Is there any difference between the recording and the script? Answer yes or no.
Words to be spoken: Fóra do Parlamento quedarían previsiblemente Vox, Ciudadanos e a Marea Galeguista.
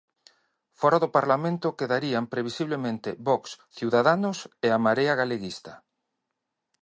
no